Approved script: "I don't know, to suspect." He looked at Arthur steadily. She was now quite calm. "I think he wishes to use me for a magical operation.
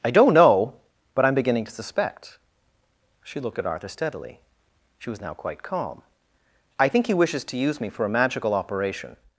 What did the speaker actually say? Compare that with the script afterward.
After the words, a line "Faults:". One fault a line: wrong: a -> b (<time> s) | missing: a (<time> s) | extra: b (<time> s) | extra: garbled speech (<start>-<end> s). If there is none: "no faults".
"I don't know, but I'm beginning to suspect." She looked at Arthur steadily. She was now quite calm. "I think he wishes to use me for a magical operation.
Faults:
extra: but I'm beginning (1.1 s)
wrong: He -> She (3.2 s)